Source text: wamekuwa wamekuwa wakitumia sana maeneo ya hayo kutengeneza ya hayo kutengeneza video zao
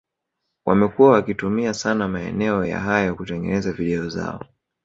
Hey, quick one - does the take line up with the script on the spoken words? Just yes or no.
no